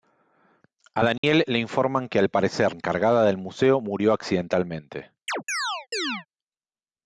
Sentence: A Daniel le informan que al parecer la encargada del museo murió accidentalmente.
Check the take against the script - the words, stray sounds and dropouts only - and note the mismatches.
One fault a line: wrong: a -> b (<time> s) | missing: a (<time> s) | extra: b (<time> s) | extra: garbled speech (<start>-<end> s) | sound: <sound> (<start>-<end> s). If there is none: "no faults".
sound: dropout (1.2-1.2 s)
missing: la (2.7 s)
sound: chirp (5.3-6.3 s)